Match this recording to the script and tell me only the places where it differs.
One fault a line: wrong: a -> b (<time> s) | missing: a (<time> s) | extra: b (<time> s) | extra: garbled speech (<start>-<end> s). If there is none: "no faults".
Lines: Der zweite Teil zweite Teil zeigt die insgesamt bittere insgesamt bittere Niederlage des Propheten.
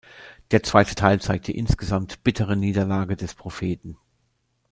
missing: zweite Teil (1.2 s)
missing: insgesamt bittere (2.5 s)